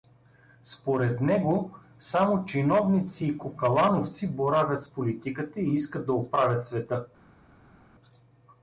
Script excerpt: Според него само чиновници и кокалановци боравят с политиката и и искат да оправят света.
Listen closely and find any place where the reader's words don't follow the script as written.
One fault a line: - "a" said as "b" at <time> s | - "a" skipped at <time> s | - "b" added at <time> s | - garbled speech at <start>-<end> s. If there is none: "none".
- "и" skipped at 5.7 s